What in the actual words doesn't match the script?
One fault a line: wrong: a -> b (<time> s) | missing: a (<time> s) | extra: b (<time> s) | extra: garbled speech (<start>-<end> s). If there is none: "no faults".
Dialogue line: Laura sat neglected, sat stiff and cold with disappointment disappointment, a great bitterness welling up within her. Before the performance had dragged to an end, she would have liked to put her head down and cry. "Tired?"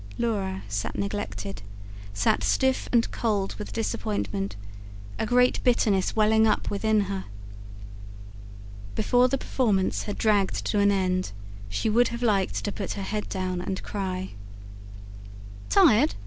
missing: disappointment (4.5 s)